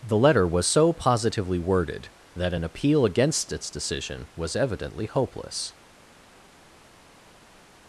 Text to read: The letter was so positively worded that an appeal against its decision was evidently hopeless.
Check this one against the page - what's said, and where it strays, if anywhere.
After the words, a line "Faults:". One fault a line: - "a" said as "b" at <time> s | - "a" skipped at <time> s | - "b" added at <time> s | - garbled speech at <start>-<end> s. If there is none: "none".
The letter was so positively worded that an appeal against its decision was evidently hopeless.
Faults:
none